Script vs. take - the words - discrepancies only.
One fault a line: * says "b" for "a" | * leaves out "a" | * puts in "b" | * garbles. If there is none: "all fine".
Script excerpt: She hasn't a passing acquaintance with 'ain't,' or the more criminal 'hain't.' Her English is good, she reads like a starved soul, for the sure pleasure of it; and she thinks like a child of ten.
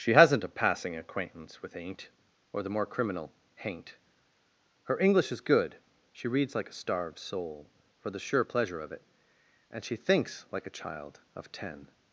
all fine